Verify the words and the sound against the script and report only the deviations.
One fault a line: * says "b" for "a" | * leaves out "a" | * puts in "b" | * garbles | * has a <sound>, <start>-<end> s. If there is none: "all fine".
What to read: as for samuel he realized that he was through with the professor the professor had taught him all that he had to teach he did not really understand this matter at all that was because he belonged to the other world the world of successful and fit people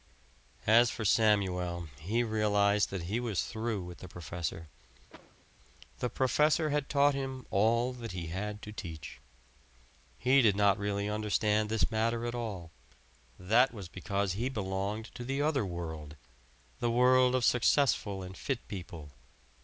* has a cough, 5.1-5.5 s